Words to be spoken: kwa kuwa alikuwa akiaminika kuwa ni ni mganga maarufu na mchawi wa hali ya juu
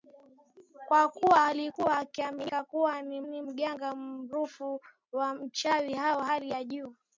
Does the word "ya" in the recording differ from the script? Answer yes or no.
no